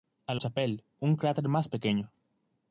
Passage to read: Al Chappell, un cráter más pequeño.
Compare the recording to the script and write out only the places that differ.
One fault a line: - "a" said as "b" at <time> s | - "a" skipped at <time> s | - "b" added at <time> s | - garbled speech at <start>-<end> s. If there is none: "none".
none